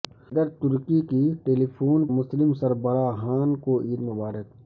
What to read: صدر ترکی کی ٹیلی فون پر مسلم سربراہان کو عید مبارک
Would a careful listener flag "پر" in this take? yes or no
yes